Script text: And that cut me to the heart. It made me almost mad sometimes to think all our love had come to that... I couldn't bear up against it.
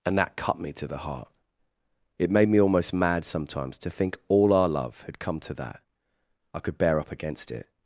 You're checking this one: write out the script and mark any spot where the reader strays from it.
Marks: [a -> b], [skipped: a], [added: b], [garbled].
And that cut me to the heart. It made me almost mad sometimes to think all our love had come to that... I [couldn't -> could] bear up against it.